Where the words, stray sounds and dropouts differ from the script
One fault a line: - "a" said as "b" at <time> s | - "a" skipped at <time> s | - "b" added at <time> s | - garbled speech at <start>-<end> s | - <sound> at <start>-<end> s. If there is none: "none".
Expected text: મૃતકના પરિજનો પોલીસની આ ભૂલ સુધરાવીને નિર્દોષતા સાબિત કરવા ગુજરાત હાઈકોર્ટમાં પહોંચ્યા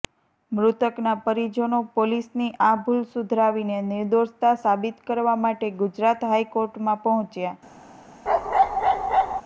- "માટે" added at 5.4 s
- bark at 8.3-9.4 s